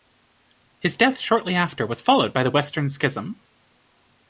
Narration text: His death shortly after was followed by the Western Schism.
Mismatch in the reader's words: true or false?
false